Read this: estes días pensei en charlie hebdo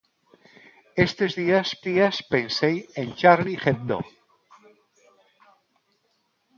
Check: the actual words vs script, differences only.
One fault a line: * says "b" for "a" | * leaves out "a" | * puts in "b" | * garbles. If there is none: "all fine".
* puts in "días"